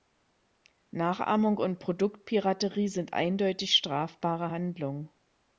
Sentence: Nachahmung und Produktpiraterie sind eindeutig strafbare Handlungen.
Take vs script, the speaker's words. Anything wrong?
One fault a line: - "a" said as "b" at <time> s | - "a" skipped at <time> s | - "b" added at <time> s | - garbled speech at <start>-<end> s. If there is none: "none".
none